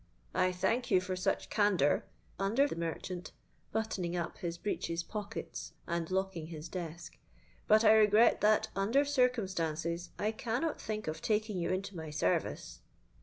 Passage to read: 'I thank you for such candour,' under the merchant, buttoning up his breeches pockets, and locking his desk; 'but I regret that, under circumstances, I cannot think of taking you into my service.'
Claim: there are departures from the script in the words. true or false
false